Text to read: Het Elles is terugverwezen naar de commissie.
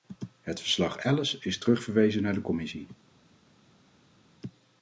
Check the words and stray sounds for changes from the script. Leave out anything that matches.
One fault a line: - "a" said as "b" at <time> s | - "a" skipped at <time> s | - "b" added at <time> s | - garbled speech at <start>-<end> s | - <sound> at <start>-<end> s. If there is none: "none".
- "verslag" added at 0.6 s